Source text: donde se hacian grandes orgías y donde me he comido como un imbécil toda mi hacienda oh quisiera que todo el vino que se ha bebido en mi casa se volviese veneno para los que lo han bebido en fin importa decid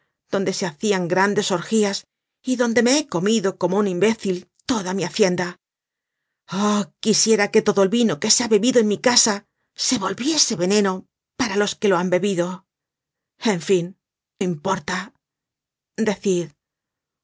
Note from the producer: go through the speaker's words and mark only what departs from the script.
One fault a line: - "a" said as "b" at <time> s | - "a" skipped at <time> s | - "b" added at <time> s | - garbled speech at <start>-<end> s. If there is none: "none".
none